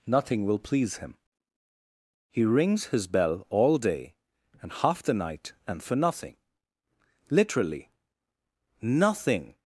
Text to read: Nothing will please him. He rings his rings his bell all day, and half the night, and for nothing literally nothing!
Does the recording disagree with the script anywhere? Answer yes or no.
yes